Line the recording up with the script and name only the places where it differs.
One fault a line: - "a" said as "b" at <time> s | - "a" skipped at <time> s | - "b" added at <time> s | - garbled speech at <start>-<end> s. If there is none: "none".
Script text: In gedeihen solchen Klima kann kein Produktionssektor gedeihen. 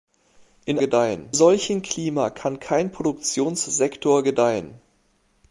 none